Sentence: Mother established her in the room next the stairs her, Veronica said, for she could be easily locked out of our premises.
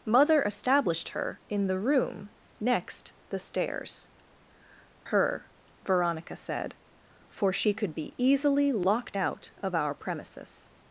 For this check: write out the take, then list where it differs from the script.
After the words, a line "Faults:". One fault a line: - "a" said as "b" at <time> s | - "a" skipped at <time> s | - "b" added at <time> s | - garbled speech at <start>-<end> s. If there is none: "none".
Mother established her in the room next the stairs her, Veronica said, for she could be easily locked out of our premises.
Faults:
none